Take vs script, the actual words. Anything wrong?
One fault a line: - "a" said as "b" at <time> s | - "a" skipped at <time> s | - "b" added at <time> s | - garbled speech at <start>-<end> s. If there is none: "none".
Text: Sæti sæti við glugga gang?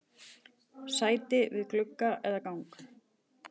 - "sæti" skipped at 1.4 s
- "eða" added at 2.3 s